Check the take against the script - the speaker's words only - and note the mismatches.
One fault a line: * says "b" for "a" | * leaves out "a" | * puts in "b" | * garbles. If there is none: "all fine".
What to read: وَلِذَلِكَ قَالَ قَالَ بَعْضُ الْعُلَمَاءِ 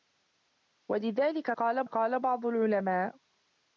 all fine